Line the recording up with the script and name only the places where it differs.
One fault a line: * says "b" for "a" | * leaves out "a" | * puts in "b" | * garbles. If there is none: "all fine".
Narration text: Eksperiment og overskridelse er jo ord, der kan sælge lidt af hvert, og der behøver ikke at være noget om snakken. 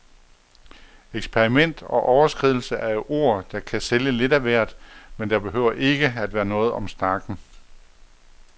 * says "men" for "og"